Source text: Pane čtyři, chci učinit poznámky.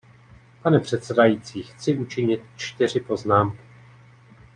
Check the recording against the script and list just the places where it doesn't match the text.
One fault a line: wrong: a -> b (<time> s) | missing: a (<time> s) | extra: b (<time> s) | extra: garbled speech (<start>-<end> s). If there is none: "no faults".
wrong: čtyři -> předsedající (0.8 s)
extra: čtyři (2.5 s)